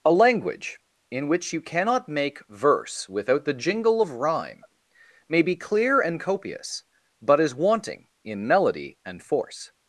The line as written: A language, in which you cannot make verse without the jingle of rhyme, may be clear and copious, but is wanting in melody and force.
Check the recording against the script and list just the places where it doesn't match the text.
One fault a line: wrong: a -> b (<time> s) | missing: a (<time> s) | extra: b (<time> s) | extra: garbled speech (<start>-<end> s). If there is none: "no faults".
no faults